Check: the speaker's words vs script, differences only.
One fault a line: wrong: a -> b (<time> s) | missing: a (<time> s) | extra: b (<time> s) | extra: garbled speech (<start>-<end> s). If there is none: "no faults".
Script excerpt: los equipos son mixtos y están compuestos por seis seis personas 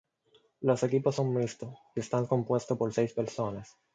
missing: seis (3.1 s)